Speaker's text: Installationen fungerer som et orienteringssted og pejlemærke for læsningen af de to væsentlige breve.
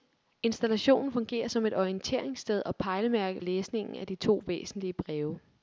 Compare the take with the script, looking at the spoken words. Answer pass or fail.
fail